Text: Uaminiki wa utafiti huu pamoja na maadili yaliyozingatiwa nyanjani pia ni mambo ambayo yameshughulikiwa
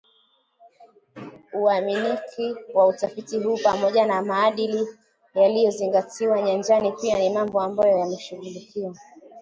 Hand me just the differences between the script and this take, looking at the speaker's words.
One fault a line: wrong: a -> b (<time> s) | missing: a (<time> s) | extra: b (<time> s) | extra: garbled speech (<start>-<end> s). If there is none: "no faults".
no faults